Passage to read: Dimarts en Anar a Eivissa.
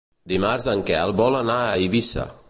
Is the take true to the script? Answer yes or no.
no